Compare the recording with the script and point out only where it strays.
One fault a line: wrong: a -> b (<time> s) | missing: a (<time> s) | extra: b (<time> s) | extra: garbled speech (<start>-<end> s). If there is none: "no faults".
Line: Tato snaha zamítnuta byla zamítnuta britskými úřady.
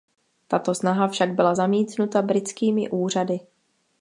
wrong: zamítnuta -> však (1.1 s)